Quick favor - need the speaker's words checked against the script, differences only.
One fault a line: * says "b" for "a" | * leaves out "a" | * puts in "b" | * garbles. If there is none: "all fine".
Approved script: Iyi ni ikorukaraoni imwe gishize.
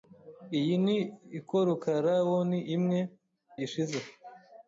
all fine